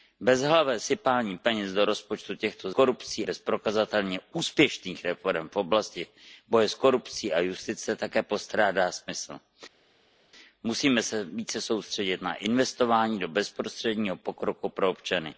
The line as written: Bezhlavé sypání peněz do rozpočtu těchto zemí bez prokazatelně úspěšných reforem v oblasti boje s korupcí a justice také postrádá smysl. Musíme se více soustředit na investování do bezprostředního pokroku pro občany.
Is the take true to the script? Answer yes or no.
no